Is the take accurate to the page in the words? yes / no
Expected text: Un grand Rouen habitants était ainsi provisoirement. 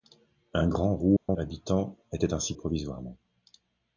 yes